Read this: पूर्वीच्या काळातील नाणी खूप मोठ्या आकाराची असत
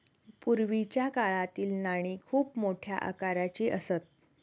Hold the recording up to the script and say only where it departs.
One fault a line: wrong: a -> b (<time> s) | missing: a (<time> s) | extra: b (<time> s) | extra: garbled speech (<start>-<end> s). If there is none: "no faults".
no faults